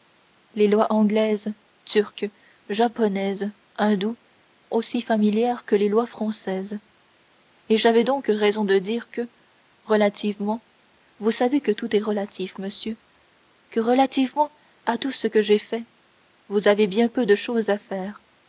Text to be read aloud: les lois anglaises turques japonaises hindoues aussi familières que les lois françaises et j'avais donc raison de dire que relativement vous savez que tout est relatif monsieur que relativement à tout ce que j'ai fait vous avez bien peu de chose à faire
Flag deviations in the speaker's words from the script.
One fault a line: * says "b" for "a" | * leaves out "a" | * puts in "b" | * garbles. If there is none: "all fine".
all fine